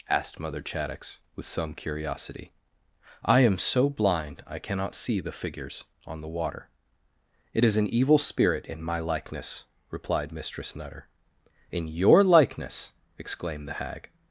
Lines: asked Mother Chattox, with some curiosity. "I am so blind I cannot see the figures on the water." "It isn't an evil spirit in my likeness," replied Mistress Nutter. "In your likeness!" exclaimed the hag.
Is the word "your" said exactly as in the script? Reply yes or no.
yes